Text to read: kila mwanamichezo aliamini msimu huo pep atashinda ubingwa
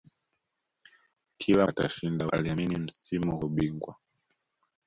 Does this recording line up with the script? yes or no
no